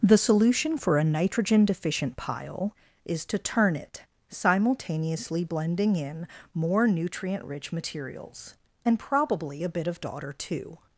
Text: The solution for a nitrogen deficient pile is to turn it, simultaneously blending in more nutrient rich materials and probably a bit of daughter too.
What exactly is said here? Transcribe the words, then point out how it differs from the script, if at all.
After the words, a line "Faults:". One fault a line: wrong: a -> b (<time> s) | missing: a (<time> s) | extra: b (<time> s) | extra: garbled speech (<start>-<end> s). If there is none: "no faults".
The solution for a nitrogen deficient pile is to turn it, simultaneously blending in more nutrient rich materials and probably a bit of daughter too.
Faults:
no faults